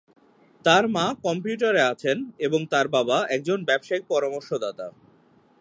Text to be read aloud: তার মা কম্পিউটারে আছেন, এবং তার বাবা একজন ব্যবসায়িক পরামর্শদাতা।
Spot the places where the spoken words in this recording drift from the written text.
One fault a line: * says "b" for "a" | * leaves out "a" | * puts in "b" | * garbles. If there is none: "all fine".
all fine